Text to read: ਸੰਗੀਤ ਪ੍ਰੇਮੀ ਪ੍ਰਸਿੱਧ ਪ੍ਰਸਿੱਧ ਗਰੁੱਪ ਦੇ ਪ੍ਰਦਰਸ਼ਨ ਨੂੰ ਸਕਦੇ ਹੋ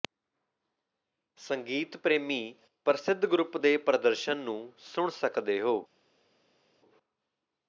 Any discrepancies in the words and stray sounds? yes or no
yes